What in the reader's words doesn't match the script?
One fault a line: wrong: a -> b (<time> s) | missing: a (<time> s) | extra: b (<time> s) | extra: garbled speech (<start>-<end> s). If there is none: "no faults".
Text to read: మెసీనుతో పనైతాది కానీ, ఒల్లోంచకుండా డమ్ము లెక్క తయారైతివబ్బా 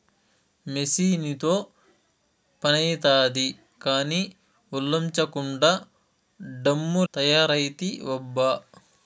missing: లెక్క (7.0 s)